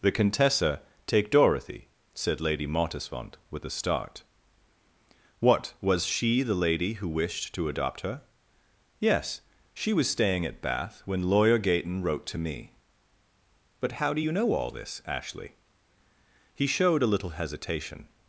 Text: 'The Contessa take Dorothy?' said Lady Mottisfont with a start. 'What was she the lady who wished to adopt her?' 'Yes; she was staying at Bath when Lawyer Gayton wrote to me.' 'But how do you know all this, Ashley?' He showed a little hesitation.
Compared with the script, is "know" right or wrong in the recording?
right